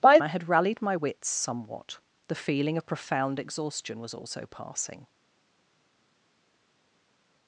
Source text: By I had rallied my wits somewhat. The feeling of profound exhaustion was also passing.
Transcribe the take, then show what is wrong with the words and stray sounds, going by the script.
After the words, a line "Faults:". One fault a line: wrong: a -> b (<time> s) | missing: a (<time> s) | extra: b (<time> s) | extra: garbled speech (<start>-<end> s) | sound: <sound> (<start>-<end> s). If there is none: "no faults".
By I had rallied my wits somewhat. The feeling of profound exhaustion was also passing.
Faults:
no faults